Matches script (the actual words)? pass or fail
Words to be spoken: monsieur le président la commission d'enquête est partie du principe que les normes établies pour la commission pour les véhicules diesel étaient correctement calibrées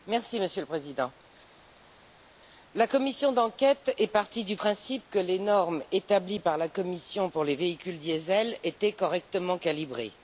fail